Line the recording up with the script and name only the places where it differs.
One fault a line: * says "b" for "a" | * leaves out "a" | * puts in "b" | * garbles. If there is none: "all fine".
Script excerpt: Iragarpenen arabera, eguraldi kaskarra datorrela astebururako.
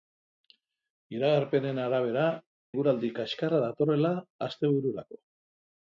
all fine